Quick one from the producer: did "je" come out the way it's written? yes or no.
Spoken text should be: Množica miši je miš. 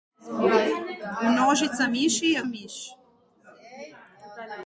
yes